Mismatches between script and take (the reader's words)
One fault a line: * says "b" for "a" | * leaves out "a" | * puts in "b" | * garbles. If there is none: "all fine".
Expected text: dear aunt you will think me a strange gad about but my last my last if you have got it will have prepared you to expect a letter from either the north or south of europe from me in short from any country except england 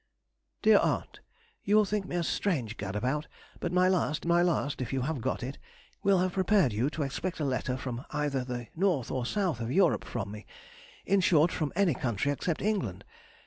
all fine